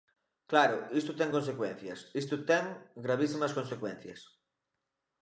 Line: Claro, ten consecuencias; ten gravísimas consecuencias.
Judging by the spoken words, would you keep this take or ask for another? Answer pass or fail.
fail